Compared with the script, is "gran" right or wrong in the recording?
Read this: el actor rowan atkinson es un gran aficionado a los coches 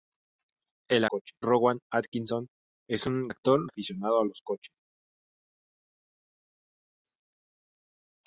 wrong